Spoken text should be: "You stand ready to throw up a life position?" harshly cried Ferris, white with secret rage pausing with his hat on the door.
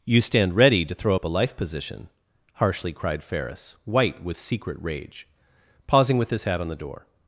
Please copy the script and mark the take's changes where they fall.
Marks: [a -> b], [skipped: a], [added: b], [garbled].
"You stand ready to throw up a life position?" harshly cried Ferris, white with secret rage pausing with his hat on the door.